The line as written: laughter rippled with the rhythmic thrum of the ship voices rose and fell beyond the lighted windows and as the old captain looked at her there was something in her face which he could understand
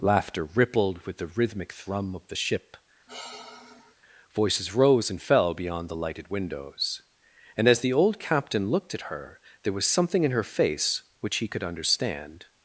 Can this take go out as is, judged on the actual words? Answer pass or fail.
pass